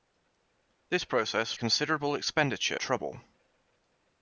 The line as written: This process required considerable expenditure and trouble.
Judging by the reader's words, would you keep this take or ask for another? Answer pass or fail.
fail